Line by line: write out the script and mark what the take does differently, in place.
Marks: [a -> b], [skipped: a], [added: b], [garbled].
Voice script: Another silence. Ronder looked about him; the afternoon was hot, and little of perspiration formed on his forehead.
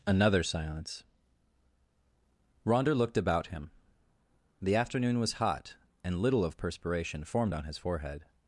Another silence. Ronder looked about him; the afternoon was hot, and little of perspiration formed on his forehead.